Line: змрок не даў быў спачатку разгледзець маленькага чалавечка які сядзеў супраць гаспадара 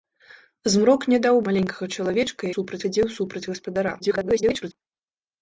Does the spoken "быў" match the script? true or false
false